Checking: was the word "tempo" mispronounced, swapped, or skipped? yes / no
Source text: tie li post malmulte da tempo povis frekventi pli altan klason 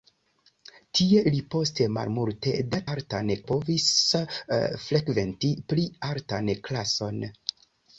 yes